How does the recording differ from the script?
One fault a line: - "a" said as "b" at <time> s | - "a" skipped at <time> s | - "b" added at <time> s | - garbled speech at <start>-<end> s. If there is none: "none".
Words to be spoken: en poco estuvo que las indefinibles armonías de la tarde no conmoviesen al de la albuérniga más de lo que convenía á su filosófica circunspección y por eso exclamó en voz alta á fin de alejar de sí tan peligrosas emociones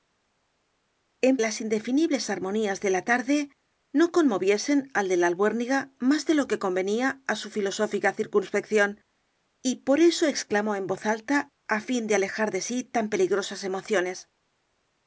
- "poco estuvo que" skipped at 1.4 s